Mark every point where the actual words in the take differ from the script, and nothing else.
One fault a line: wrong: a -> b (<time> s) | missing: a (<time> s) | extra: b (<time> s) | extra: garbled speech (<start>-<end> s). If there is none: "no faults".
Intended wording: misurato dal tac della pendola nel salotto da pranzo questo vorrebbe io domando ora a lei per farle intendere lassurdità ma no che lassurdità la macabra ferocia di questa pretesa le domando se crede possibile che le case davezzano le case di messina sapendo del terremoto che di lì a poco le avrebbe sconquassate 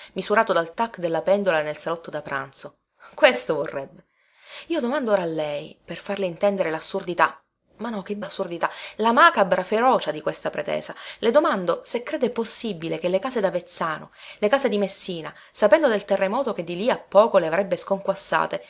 no faults